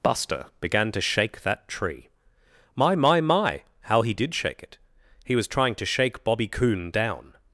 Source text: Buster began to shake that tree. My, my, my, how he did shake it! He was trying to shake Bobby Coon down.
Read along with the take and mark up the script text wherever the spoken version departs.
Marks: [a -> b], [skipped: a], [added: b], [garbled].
Buster began to shake that tree. My, my, my, how he did shake it! He was trying to shake Bobby Coon down.